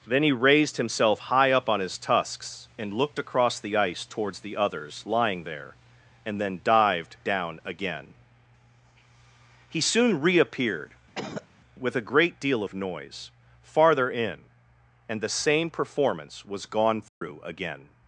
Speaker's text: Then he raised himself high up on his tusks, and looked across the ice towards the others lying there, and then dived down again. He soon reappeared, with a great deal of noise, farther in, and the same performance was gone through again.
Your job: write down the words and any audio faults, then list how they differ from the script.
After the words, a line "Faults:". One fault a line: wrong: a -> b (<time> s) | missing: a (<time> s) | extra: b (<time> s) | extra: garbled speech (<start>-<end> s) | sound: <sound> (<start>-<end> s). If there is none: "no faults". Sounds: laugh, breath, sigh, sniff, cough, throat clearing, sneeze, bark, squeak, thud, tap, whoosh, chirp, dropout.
Then he raised himself high up on his tusks, and looked across the ice towards the others lying there, and then dived down again. He soon reappeared, with a great deal of noise, farther in, and the same performance was gone through again.
Faults:
sound: cough (11.1-11.5 s)
sound: dropout (17.1-17.2 s)